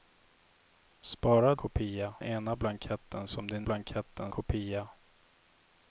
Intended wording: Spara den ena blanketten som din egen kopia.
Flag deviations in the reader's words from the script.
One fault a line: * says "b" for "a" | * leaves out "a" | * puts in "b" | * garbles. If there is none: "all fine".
* says "kopia" for "den"
* says "blanketten" for "egen"